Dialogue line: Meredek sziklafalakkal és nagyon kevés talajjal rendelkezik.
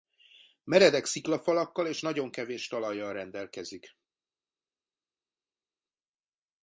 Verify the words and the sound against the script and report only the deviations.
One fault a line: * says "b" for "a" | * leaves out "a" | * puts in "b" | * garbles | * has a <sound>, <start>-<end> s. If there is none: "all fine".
all fine